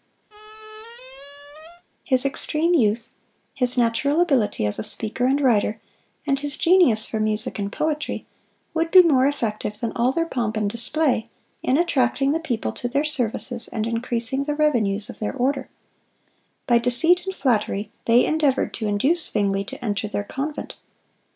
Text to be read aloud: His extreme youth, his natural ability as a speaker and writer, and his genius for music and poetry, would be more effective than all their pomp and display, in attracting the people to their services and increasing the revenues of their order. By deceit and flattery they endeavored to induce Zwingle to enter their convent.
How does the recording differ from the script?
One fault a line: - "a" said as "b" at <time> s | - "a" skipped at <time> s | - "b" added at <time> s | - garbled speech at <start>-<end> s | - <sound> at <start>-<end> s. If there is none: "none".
- squeak at 0.3-1.8 s